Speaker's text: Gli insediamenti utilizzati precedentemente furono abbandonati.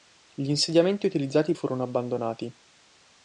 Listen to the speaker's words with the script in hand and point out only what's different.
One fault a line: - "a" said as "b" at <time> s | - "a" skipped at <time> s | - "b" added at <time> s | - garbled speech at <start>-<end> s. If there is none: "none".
- "precedentemente" skipped at 1.5 s